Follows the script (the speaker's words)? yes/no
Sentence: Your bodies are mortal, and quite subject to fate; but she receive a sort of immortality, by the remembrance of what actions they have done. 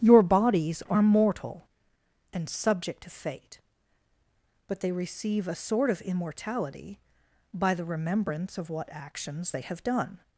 no